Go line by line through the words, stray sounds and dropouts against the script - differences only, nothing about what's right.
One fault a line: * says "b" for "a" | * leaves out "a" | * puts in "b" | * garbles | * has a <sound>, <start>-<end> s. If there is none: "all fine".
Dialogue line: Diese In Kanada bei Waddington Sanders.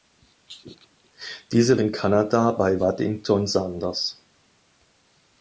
all fine